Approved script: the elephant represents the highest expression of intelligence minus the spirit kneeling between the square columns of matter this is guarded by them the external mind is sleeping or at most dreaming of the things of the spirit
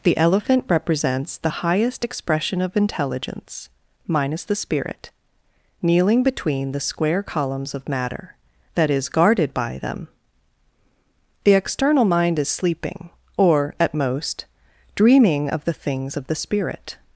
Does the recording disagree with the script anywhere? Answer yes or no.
yes